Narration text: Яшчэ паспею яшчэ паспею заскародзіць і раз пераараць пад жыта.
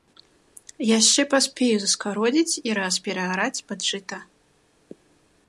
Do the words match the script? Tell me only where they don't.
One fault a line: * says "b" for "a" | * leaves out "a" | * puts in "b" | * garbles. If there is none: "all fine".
* leaves out "яшчэ паспею"